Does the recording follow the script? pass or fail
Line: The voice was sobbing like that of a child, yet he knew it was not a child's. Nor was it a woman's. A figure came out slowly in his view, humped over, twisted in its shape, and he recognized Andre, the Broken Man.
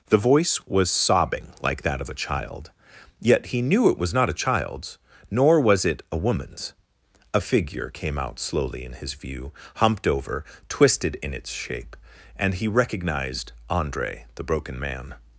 pass